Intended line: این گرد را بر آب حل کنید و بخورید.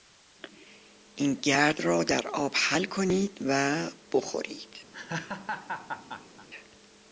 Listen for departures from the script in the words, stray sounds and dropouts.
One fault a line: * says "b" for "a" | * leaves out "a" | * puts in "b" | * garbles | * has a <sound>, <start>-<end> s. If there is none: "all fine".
* says "در" for "بر"
* has a laugh, 4.9-6.5 s